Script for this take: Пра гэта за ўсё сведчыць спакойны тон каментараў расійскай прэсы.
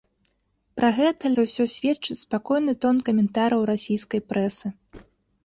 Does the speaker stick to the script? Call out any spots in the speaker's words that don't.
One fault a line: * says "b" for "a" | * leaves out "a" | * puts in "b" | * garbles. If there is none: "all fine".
all fine